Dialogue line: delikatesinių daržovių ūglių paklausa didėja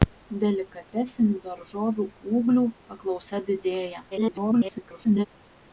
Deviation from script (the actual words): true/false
true